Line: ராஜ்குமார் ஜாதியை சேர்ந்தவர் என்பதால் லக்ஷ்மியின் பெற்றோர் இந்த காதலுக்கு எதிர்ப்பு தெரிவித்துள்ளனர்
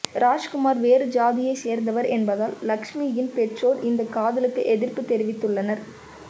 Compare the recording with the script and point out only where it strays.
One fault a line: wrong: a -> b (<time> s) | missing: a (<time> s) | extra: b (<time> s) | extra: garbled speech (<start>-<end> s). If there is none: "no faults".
extra: வேறு (0.8 s)